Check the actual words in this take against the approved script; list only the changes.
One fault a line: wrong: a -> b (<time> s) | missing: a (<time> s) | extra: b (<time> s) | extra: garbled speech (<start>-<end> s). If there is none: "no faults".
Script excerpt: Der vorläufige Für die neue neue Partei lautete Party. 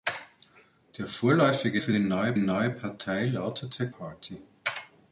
no faults